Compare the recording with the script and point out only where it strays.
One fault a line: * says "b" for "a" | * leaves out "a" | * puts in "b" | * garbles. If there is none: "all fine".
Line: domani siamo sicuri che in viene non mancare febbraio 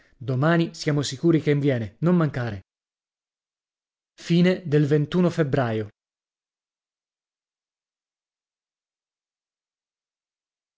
all fine